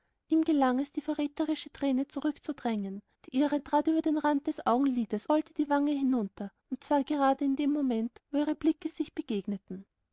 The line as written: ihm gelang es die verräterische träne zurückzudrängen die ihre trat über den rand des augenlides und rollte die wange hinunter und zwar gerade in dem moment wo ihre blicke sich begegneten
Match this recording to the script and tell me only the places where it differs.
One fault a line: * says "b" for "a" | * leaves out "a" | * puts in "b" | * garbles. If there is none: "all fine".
* leaves out "und"